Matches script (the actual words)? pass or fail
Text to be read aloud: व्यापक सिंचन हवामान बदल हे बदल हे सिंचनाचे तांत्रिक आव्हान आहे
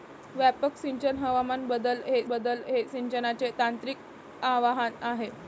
pass